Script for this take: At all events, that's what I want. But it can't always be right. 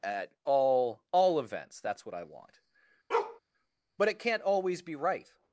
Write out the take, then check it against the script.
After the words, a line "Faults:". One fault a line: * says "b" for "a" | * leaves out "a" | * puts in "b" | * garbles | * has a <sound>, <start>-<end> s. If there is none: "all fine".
At all all events, that's what I want. But it can't always be right.
Faults:
* puts in "all"
* has a bark, 3.1-3.4 s